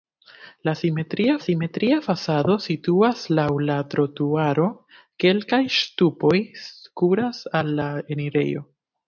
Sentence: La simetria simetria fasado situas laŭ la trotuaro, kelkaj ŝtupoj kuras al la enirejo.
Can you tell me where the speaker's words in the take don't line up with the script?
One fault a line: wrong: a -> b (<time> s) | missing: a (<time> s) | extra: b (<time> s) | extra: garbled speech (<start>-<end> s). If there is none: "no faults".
no faults